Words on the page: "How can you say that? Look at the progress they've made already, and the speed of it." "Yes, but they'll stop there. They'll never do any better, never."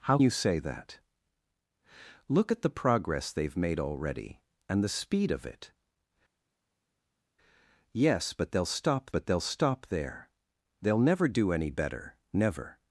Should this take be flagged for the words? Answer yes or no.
yes